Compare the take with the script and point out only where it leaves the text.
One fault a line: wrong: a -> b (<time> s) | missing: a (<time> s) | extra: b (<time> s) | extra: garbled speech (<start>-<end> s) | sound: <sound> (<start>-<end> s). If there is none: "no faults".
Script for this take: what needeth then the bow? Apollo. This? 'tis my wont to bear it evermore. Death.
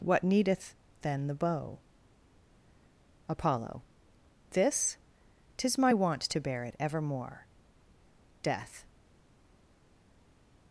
no faults